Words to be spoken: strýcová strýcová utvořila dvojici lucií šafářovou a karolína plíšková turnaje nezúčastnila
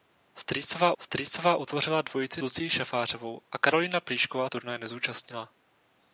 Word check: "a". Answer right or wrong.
right